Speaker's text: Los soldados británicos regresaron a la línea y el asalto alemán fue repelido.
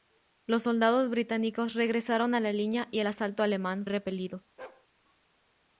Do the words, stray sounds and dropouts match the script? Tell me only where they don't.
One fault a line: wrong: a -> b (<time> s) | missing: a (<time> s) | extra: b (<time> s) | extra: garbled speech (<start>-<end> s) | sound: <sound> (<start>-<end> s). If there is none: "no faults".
missing: fue (3.9 s)
sound: bark (4.6-4.9 s)